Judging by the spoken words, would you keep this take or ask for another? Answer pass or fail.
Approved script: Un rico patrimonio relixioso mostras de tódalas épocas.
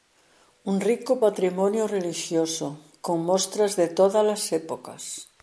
fail